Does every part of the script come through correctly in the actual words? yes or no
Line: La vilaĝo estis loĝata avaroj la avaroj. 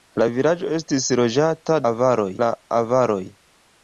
yes